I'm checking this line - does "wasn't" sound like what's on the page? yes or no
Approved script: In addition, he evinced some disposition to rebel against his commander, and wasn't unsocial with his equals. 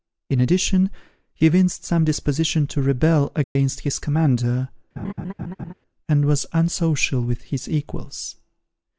no